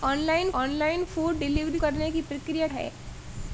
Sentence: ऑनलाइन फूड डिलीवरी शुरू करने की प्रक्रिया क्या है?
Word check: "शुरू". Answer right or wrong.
wrong